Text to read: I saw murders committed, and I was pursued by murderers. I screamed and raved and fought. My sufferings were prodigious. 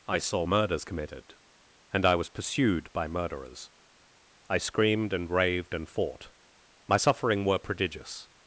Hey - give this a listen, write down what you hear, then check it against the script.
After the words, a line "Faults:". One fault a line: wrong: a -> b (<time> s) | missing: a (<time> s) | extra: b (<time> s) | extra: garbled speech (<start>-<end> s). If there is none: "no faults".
I saw murders committed, and I was pursued by murderers. I screamed and raved and fought. My suffering were prodigious.
Faults:
wrong: sufferings -> suffering (7.0 s)